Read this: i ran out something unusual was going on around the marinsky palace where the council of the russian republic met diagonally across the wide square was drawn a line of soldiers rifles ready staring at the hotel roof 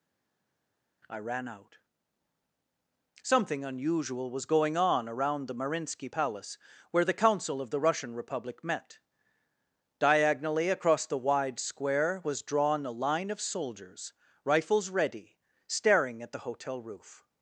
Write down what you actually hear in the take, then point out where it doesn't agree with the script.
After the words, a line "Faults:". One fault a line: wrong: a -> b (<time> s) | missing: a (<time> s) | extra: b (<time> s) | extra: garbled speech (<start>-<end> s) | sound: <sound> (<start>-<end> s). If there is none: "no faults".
i ran out something unusual was going on around the marinsky palace where the council of the russian republic met diagonally across the wide square was drawn a line of soldiers rifles ready staring at the hotel roof
Faults:
no faults